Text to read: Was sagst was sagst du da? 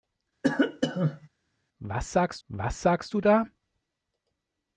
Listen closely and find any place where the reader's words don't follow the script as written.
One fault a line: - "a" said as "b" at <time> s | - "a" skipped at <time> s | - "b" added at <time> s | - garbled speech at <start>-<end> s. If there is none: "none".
none